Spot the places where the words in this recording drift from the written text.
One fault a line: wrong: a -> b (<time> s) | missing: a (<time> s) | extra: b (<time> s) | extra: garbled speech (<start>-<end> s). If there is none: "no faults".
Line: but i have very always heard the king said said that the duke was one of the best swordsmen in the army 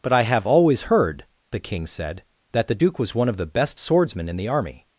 missing: very (0.5 s)
missing: said (2.2 s)